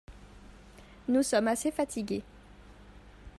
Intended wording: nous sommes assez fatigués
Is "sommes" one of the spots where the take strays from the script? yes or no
no